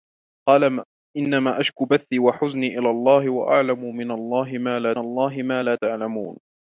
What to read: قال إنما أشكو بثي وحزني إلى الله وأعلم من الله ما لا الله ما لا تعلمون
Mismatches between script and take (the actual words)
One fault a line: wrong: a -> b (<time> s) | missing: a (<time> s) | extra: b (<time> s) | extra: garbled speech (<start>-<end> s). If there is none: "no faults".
no faults